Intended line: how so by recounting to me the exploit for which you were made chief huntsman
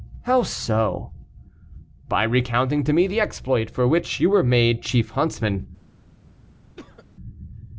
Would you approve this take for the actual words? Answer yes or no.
yes